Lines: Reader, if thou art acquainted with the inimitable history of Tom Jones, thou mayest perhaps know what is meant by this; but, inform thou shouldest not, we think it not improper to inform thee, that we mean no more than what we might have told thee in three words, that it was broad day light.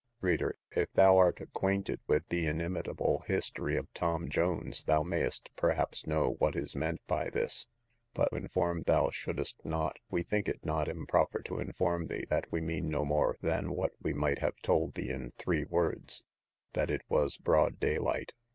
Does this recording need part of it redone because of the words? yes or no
no